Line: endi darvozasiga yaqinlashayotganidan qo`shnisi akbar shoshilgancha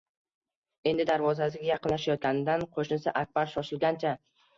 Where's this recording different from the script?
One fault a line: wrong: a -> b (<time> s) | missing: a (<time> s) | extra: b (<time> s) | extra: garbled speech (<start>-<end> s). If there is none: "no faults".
no faults